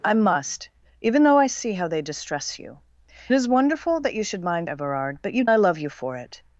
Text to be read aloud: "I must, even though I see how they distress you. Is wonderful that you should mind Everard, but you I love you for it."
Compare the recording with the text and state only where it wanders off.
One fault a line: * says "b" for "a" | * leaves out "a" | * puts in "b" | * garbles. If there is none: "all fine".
all fine